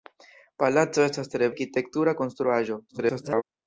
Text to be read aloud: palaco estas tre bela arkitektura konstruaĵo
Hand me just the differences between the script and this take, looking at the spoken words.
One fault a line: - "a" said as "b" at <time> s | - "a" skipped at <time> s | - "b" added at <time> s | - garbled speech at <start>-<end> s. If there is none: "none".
- "bela" skipped at 1.5 s
- garbled speech at 2.9-3.4 s